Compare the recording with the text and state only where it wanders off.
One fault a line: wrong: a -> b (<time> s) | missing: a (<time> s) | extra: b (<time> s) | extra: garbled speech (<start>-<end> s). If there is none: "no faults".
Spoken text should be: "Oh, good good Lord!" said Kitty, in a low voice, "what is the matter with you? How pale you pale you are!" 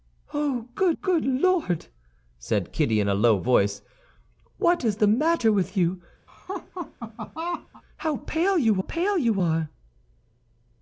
no faults